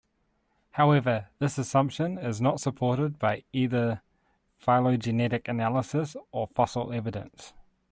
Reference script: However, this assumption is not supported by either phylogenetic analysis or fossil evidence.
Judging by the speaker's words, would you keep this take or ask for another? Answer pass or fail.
pass